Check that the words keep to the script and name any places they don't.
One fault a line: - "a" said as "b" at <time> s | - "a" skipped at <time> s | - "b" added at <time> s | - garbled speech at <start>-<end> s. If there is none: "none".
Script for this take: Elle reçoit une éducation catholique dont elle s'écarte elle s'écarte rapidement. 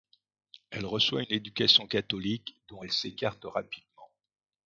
- "elle s'écarte" skipped at 3.5 s